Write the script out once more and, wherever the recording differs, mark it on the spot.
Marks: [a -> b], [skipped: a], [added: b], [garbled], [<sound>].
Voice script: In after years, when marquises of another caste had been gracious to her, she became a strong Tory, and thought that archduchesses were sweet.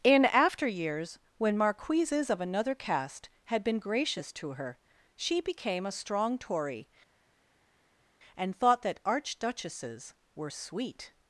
In after years, when marquises of another caste had been gracious to her, she became a strong Tory, and thought that archduchesses were sweet.